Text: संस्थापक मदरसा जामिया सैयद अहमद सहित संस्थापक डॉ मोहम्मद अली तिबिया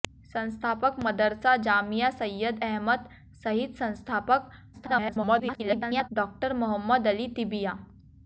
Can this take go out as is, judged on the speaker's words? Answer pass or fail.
fail